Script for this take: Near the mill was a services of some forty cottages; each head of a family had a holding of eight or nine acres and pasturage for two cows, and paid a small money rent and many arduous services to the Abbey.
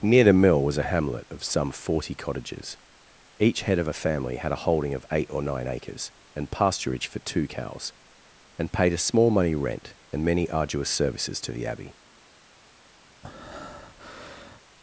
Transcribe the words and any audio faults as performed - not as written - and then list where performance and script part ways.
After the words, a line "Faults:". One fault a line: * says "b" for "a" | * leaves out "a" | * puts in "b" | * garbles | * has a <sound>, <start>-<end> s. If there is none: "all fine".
Near the mill was a hamlet of some forty cottages; each head of a family had a holding of eight or nine acres and pasturage for two cows, and paid a small money rent and many arduous services to the Abbey.
Faults:
* says "hamlet" for "services"
* has a breath, 13.2-14.6 s